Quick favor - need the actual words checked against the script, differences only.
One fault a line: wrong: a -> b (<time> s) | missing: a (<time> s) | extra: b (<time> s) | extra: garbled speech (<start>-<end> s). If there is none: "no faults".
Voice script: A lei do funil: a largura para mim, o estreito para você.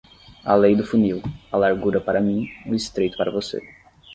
no faults